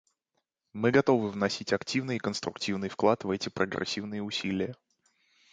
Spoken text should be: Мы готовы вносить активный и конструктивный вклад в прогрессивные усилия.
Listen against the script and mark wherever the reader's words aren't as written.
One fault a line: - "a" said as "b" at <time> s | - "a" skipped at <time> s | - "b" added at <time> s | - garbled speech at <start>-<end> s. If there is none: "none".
- "эти" added at 3.3 s